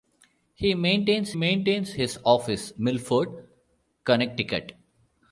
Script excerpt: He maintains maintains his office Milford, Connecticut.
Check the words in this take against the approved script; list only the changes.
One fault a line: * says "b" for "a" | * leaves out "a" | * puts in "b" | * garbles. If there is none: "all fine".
all fine